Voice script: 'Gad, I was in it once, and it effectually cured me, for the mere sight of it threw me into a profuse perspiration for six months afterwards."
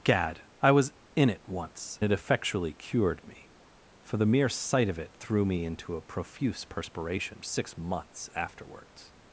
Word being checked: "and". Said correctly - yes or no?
no